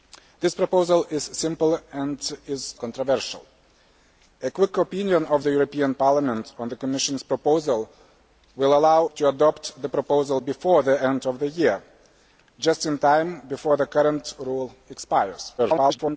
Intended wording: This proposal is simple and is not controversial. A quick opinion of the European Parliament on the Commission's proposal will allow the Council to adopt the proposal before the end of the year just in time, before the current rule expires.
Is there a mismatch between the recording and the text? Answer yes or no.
yes